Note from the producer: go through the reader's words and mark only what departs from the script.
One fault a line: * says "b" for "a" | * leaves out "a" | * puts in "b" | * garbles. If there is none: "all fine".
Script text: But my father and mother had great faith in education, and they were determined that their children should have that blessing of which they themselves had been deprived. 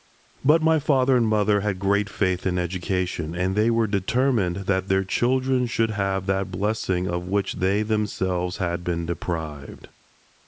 all fine